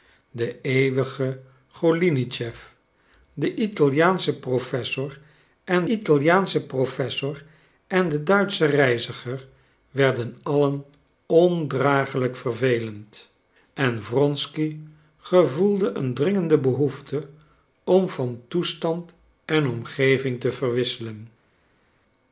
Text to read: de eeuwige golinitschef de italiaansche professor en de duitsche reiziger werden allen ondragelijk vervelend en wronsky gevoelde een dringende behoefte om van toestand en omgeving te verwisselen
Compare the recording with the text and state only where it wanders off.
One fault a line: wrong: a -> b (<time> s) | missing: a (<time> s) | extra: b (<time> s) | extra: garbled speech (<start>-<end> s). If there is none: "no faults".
extra: italiaansche professor en (5.8 s)